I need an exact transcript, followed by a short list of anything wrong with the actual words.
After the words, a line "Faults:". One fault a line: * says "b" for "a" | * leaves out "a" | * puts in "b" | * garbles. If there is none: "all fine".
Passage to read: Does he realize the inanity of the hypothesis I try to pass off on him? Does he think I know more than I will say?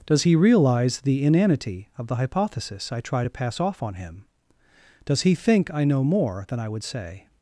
Does he realize the inanity of the hypothesis I try to pass off on him? Does he think I know more than I would say?
Faults:
* says "would" for "will"